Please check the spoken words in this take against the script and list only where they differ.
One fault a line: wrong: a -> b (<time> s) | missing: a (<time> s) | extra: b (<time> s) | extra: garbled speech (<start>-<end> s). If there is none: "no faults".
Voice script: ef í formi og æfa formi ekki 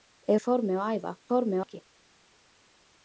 no faults